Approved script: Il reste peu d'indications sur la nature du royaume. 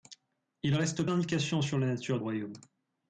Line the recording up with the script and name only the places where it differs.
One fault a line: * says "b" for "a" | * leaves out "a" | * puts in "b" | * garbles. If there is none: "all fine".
* leaves out "peu"
* leaves out "du"